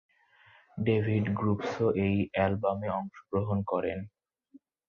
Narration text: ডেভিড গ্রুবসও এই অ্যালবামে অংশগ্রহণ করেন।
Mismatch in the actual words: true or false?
false